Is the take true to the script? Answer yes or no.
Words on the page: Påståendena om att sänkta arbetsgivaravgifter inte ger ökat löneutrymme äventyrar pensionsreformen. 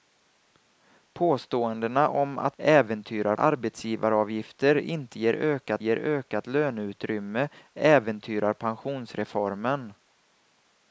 no